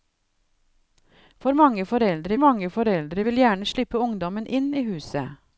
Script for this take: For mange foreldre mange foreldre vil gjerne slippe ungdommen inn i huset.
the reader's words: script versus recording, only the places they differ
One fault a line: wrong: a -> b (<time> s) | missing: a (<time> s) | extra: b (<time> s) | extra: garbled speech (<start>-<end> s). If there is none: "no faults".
no faults